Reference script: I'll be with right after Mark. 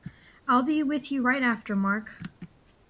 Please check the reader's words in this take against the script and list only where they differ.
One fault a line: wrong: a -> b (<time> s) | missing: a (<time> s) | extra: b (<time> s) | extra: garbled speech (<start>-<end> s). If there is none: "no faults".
extra: you (1.1 s)